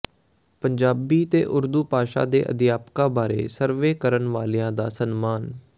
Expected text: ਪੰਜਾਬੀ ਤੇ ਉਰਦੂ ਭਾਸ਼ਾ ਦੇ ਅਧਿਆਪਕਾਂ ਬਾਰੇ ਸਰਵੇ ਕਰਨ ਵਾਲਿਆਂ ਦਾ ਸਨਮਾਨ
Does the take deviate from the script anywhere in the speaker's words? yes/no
no